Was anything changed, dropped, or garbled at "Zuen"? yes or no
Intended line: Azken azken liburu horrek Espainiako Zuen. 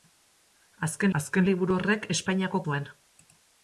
no